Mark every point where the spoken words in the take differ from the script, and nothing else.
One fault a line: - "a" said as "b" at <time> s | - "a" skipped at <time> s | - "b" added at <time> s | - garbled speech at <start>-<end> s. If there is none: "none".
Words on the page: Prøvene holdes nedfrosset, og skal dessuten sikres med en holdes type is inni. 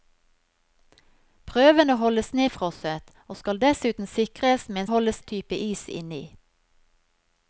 none